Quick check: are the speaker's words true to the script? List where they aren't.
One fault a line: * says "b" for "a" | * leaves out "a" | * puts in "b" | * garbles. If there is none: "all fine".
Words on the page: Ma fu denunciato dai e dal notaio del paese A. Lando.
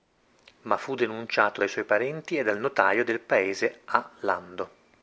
* puts in "suoi parenti"